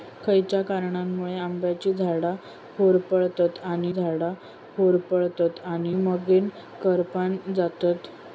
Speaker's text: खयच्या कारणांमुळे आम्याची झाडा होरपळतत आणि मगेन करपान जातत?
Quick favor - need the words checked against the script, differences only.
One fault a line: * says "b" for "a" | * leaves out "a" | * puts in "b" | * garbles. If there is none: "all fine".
* puts in "झाडा होरपळतत आणि"